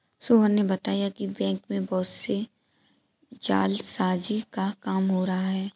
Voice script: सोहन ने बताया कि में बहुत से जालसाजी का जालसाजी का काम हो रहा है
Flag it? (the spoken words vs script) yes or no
yes